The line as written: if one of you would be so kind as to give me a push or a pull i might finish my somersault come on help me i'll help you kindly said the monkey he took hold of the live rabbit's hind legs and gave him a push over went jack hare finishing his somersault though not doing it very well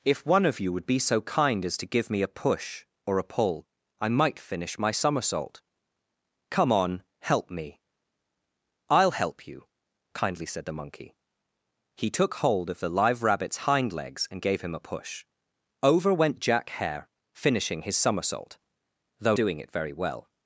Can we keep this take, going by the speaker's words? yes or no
no